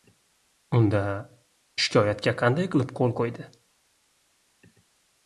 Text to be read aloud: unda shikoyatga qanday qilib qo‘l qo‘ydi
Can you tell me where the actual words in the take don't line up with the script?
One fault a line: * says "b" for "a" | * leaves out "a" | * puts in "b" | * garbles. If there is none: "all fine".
all fine